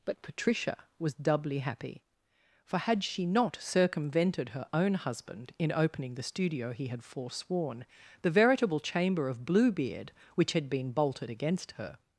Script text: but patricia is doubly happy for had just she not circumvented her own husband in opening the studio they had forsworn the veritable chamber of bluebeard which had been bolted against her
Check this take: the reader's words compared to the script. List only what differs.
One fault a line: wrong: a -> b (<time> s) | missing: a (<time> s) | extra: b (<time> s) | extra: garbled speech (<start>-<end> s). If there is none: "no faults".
wrong: is -> was (1.0 s)
missing: just (3.0 s)
wrong: they -> he (6.7 s)